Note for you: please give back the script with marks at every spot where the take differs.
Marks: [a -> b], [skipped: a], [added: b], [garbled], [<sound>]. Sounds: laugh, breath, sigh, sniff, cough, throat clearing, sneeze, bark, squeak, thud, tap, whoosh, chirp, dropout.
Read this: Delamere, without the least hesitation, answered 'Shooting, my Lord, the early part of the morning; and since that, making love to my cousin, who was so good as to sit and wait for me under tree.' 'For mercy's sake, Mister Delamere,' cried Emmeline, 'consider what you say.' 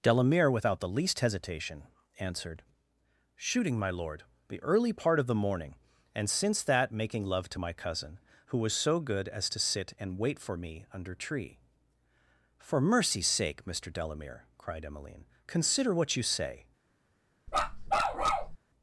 Delamere, without the least hesitation, answered 'Shooting, my Lord, the early part of the morning; and since that, making love to my cousin, who was so good as to sit and wait for me under tree.' 'For mercy's sake, Mister Delamere,' cried Emmeline, 'consider what you say.' [bark]